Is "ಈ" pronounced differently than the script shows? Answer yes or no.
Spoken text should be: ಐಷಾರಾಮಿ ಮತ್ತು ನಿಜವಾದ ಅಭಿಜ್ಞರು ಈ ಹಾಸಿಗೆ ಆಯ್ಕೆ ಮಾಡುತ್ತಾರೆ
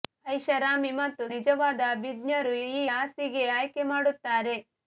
no